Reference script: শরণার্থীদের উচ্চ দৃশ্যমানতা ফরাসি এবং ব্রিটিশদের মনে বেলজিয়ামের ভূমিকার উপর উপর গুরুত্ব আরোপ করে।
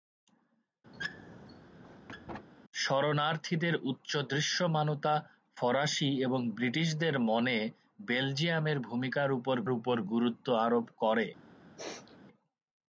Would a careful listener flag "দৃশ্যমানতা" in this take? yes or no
no